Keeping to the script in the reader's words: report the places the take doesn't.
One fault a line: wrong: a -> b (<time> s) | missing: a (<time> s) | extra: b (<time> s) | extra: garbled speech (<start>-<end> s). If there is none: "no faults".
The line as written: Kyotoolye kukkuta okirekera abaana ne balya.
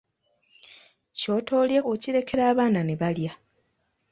missing: kukkuta (1.8 s)